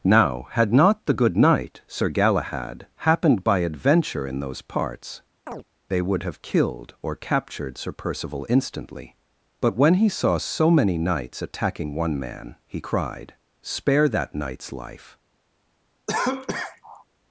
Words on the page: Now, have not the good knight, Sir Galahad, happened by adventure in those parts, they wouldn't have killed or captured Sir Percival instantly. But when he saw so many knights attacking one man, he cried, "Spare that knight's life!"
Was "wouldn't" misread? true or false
true